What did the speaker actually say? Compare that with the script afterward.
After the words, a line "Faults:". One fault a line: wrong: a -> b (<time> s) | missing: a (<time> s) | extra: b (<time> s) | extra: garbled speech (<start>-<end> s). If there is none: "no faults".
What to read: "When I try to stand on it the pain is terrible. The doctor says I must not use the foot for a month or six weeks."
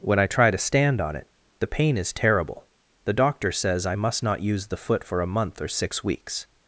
"When I try to stand on it the pain is terrible. The doctor says I must not use the foot for a month or six weeks."
Faults:
no faults